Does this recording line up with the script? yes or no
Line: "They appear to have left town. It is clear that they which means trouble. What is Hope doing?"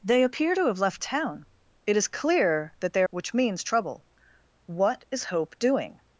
yes